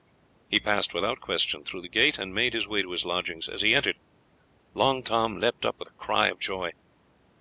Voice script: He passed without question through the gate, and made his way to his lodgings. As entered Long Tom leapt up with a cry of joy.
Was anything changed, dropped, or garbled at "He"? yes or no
no